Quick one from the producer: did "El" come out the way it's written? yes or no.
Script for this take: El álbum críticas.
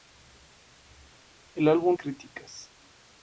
yes